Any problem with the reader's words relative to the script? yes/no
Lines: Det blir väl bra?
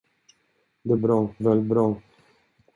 yes